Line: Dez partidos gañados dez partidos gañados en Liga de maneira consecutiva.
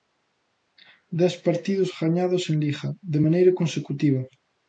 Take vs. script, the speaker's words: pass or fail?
fail